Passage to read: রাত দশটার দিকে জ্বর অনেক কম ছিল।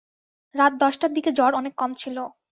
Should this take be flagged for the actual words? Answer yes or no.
no